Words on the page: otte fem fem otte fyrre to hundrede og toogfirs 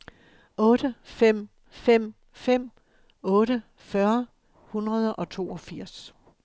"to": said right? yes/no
no